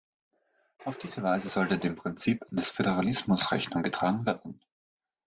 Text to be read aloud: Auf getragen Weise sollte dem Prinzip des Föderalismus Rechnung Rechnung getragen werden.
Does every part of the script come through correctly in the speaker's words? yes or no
no